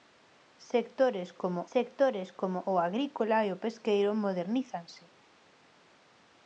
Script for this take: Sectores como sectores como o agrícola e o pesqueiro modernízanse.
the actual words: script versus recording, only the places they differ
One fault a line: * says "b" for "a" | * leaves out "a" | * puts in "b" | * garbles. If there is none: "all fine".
all fine